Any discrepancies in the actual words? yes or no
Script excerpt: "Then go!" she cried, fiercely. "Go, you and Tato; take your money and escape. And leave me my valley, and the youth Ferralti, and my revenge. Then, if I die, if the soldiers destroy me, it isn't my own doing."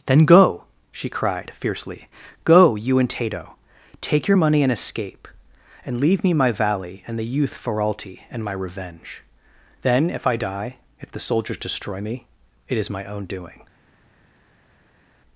yes